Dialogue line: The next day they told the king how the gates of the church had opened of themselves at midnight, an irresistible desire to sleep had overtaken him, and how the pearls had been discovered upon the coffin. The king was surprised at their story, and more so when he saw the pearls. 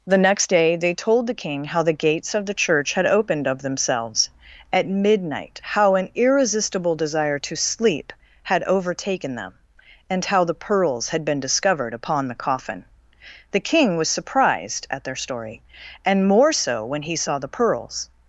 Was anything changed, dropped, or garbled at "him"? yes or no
yes